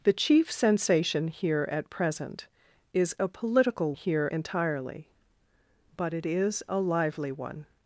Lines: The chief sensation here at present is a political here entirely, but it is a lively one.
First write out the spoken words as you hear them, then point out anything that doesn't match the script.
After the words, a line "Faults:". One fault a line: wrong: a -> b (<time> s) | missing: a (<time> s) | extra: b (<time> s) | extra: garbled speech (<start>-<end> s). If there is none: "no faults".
The chief sensation here at present is a political here entirely, but it is a lively one.
Faults:
no faults